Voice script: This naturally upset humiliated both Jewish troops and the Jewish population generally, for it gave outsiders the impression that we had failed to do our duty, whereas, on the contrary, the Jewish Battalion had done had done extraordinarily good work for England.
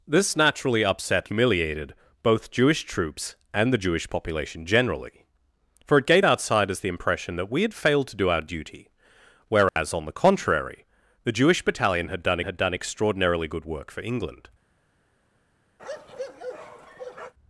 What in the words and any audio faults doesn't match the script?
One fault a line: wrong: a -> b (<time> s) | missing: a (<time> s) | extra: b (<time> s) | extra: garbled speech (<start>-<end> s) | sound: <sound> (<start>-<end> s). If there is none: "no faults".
sound: dropout (9.7-9.8 s)
sound: bark (15.8-17.3 s)